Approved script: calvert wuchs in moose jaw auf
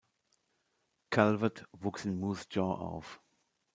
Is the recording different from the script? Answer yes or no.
no